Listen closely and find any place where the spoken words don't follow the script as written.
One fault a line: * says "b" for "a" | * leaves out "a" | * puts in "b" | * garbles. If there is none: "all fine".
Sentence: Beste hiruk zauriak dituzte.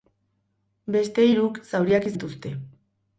all fine